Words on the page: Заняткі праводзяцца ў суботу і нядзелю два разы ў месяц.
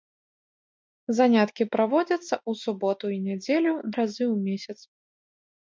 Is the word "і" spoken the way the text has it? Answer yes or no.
yes